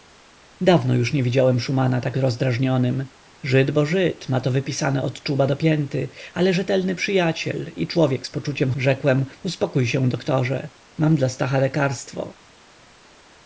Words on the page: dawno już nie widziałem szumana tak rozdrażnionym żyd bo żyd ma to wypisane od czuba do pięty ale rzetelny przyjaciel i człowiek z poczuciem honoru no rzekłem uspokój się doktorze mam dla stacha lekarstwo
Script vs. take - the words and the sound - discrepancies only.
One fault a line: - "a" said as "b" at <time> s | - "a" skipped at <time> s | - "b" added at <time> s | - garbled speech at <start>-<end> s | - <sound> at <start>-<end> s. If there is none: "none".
- "honoru no" skipped at 8.7 s